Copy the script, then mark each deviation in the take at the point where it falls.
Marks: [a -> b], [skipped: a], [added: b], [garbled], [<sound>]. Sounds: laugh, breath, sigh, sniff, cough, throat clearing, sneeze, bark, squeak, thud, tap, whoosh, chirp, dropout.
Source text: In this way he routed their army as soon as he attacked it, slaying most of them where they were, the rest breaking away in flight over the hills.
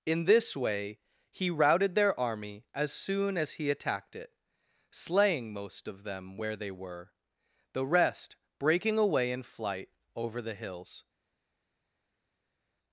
In this way he routed their army as soon as he attacked it, slaying most of them where they were, the rest breaking away in flight over the hills.